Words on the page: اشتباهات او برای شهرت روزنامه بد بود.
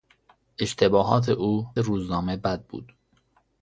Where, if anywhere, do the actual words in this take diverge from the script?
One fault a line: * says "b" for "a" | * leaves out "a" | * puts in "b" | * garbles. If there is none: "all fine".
* leaves out "برای شهرت"